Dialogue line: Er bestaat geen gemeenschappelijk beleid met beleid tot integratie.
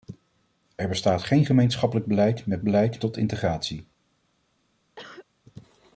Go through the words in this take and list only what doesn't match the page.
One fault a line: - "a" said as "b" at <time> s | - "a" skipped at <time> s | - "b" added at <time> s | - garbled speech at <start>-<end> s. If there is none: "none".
none